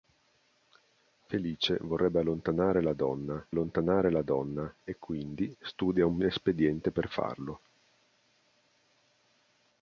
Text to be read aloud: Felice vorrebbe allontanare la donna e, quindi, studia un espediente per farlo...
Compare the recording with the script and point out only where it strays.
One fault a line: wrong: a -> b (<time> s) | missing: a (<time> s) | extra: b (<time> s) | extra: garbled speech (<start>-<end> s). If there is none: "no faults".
extra: allontanare la donna (3.5 s)